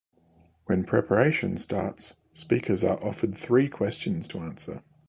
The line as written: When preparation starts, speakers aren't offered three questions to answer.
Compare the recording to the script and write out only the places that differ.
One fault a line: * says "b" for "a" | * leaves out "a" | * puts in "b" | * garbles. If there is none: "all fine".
* says "are" for "aren't"